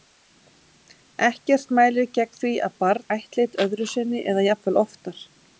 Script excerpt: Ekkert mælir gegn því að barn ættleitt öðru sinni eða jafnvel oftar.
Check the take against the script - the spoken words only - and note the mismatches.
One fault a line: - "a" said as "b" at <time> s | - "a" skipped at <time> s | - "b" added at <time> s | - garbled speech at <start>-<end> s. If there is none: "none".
none